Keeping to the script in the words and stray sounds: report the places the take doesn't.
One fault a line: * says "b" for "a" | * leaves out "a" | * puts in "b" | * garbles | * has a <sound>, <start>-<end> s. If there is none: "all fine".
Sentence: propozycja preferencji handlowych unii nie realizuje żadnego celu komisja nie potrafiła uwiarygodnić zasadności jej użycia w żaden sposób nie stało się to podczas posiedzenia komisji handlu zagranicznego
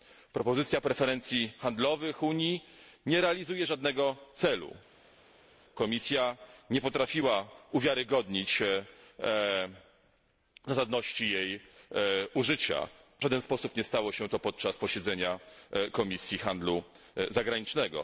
all fine